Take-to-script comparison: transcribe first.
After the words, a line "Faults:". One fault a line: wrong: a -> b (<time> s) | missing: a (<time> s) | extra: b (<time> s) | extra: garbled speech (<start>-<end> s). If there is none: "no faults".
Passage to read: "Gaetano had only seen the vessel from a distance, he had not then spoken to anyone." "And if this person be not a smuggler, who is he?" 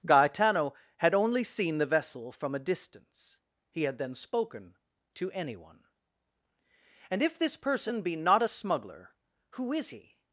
"Gaetano had only seen the vessel from a distance, he had then spoken to anyone." "And if this person be not a smuggler, who is he?"
Faults:
missing: not (4.0 s)